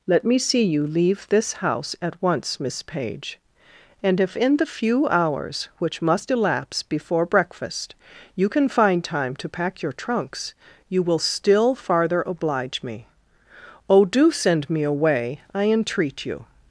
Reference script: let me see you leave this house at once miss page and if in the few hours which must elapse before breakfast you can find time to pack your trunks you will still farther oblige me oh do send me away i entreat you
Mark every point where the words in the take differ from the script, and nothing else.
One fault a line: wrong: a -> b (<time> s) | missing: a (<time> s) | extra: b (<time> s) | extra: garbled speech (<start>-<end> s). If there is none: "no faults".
no faults